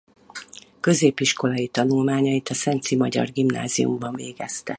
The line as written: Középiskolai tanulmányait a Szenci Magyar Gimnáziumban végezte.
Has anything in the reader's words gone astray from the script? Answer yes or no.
no